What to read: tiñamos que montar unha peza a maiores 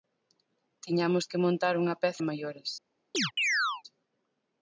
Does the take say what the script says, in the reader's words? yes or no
yes